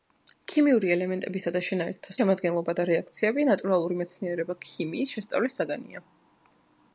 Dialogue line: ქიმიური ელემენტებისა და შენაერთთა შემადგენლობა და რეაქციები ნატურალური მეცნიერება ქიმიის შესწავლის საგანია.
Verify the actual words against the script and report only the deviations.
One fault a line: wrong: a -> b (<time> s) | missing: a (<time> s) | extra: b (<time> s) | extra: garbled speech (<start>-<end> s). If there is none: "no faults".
no faults